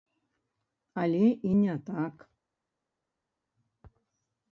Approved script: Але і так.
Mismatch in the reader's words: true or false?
true